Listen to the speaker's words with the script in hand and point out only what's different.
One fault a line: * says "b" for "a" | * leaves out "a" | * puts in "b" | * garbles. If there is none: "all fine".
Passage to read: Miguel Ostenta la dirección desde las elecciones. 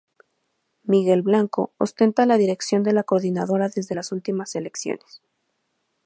* puts in "Blanco"
* puts in "de la coordinadora"
* puts in "últimas"